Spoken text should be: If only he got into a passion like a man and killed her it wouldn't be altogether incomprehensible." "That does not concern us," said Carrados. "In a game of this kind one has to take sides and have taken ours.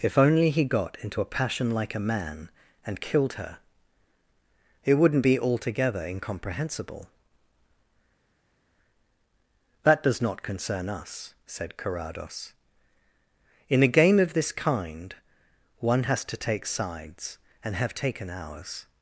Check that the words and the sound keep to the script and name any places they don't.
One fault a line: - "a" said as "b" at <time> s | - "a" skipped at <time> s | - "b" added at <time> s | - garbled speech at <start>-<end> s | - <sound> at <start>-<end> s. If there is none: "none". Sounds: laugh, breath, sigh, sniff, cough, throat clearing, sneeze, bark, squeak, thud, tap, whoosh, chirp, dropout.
none